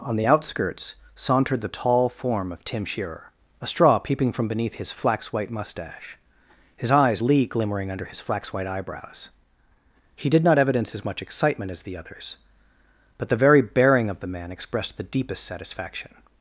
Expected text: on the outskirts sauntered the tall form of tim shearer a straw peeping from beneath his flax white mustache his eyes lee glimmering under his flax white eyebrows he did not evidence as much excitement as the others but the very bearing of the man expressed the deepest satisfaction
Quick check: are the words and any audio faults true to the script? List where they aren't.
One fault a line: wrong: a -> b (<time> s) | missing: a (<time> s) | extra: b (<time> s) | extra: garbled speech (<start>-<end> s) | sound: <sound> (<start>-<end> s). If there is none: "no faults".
no faults